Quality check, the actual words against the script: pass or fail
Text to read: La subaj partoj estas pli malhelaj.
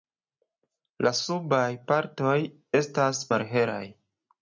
fail